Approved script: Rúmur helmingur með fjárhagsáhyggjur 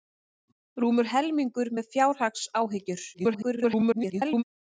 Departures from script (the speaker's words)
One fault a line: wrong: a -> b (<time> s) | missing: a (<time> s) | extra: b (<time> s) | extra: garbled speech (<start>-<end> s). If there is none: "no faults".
extra: garbled speech (3.1-4.4 s)